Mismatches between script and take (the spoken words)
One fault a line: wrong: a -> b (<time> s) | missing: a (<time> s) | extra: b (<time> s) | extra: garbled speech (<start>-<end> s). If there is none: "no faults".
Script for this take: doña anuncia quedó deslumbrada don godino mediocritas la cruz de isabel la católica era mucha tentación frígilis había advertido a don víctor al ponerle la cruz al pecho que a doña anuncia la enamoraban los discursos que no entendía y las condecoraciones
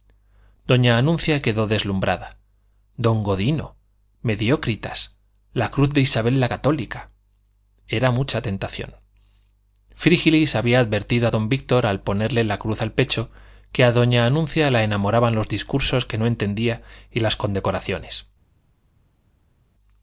no faults